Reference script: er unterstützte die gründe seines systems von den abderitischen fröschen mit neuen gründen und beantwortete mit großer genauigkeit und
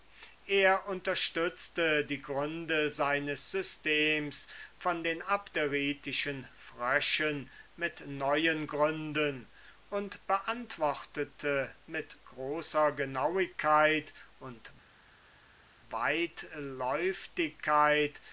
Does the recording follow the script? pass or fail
pass